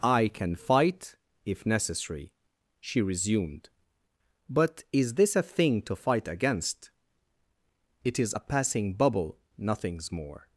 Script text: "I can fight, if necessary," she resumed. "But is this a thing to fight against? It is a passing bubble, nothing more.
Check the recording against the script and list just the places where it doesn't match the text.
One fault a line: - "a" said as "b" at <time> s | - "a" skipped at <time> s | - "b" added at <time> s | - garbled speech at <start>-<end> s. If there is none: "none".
- "nothing" said as "nothings" at 9.6 s